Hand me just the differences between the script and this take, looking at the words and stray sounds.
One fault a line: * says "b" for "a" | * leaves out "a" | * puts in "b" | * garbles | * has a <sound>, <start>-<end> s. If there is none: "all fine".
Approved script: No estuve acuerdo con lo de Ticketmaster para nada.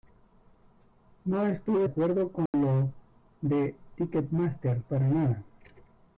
* has a dropout, 2.5-2.5 s